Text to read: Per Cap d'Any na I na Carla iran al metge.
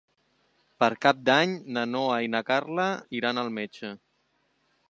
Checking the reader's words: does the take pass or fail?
fail